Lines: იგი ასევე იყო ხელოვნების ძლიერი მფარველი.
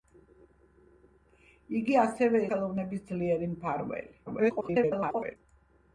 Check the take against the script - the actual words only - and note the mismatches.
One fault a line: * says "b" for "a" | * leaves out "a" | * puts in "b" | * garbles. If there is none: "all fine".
* leaves out "იყო"
* garbles